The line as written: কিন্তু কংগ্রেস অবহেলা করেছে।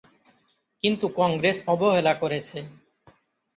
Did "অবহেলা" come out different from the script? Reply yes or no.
no